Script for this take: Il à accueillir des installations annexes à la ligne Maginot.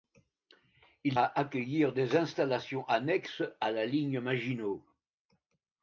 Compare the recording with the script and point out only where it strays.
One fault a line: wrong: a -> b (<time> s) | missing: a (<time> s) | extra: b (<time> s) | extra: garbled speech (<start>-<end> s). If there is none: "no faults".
no faults